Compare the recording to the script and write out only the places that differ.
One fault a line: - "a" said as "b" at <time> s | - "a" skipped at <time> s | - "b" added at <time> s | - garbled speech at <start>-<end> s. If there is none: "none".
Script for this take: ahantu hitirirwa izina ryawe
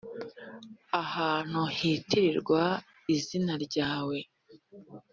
none